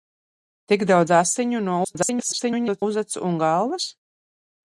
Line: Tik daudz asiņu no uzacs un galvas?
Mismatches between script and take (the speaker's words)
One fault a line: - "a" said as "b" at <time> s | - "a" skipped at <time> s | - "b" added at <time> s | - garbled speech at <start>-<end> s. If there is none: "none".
- garbled speech at 1.8-2.8 s